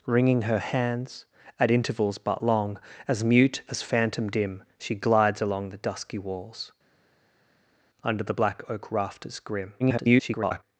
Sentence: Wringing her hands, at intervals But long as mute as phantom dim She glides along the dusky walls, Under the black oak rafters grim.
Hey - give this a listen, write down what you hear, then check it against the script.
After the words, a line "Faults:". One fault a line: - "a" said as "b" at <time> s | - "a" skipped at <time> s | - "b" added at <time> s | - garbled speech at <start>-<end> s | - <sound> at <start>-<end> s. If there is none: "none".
Wringing her hands, at intervals But long as mute as phantom dim She glides along the dusky walls, Under the black oak rafters grim. [garbled]
Faults:
- garbled speech at 9.8-10.6 s